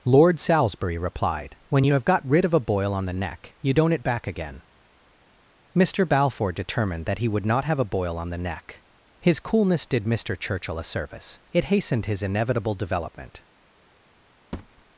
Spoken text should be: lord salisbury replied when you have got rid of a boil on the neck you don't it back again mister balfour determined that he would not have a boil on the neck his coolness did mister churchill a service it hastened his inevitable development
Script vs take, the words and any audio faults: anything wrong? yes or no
yes